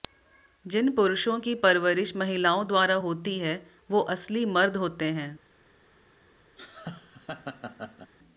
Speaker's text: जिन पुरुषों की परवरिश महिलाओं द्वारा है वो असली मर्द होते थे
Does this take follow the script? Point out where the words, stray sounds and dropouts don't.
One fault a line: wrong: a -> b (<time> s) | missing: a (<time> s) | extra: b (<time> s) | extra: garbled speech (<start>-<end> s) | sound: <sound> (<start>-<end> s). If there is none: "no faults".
extra: होती (3.0 s)
wrong: थे -> हैं (5.1 s)
sound: laugh (6.6-8.1 s)